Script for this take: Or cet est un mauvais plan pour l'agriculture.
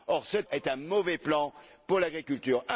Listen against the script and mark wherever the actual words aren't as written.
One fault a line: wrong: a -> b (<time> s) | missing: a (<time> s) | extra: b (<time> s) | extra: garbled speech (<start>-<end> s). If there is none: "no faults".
no faults